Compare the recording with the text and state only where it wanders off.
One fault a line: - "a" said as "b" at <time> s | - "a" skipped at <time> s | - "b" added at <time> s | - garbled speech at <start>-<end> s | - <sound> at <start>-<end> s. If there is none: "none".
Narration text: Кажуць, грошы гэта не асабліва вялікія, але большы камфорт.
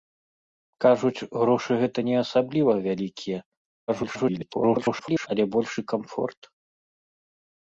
- garbled speech at 3.9-5.3 s